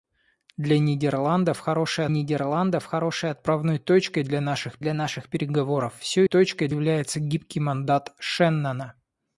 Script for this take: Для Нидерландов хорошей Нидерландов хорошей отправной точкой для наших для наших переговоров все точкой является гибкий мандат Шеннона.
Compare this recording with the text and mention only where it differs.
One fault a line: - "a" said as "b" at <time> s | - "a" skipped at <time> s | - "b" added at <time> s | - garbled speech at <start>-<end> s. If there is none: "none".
none